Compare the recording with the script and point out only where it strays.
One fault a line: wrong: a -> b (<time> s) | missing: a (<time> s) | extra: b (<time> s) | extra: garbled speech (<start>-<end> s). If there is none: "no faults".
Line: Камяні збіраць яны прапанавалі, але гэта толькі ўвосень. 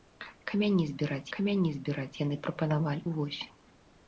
extra: камяні збіраць (1.4 s)
missing: але гэта толькі (3.0 s)